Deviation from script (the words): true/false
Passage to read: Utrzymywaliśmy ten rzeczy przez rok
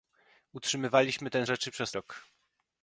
false